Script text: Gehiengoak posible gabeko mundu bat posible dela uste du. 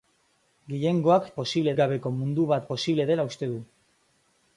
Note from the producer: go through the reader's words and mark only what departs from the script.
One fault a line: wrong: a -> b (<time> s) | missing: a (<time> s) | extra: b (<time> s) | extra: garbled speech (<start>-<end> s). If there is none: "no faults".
no faults